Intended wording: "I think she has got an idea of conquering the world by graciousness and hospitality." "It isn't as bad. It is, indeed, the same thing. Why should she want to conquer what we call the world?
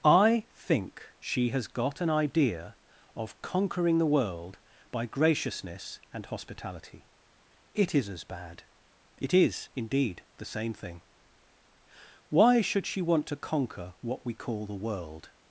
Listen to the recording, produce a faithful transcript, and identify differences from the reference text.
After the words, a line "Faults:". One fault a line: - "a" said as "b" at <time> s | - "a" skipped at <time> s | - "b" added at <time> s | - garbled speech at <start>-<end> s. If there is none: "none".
"I think she has got an idea of conquering the world by graciousness and hospitality." "It is as bad. It is, indeed, the same thing. Why should she want to conquer what we call the world?
Faults:
- "isn't" said as "is" at 7.9 s